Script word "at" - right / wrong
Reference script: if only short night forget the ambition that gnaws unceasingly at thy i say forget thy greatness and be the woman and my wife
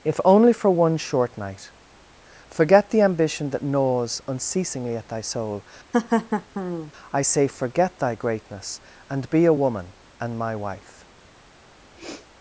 right